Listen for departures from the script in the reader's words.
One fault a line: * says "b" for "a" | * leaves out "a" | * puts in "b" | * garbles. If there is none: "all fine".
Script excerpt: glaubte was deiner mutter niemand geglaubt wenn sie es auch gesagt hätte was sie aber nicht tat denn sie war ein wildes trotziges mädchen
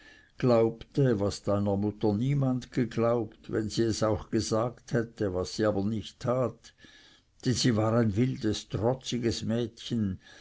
all fine